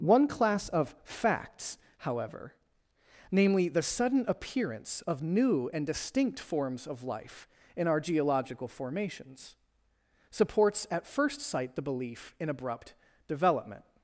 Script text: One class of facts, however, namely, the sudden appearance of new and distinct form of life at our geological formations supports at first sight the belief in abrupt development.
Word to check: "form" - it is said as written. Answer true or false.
false